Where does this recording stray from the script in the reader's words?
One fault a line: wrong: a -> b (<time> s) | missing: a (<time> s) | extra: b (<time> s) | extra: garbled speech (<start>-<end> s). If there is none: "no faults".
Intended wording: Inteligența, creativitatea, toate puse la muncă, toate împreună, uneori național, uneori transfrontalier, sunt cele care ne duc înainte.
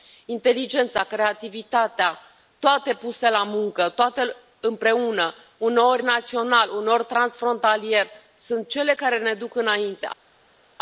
no faults